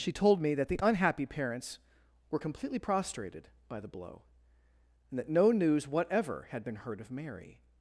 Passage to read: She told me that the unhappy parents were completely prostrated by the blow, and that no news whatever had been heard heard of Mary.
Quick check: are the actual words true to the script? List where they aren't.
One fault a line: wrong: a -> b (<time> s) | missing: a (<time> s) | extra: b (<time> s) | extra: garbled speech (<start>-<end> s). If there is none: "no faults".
missing: heard (7.0 s)